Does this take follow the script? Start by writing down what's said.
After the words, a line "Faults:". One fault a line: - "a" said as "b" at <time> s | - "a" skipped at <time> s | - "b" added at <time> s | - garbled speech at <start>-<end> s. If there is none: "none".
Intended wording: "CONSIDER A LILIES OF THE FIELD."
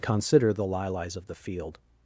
"CONSIDER THE LILIES OF THE FIELD."
Faults:
- "A" said as "THE" at 0.5 s